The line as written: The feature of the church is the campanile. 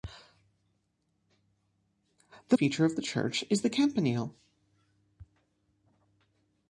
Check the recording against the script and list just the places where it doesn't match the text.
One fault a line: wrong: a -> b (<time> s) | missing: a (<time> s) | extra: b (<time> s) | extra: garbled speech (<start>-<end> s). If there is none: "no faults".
no faults